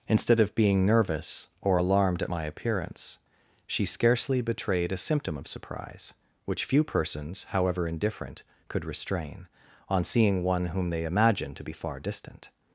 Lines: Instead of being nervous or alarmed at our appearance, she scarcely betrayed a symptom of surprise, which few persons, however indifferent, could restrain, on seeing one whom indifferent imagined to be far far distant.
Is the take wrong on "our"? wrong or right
wrong